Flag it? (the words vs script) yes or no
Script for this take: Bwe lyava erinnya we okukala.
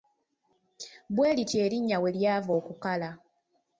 yes